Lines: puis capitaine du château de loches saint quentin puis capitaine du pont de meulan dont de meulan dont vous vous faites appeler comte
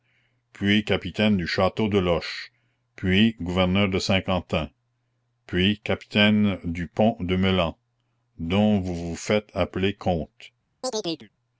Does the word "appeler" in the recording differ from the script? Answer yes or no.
no